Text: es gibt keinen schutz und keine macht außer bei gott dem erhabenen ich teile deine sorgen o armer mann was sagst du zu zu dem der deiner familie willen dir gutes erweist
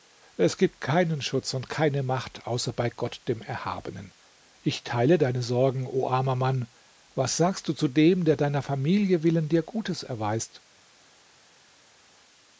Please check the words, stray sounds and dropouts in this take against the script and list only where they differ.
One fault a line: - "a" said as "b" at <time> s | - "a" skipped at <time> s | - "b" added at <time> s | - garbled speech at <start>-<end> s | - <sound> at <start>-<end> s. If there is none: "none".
- "zu" skipped at 7.9 s